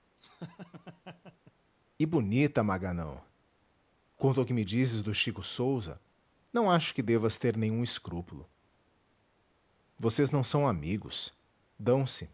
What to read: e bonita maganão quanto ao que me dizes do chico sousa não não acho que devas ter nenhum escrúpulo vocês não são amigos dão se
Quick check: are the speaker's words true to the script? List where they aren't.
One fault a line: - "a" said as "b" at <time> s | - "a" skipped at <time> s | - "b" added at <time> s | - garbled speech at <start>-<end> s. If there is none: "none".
- "não" skipped at 6.7 s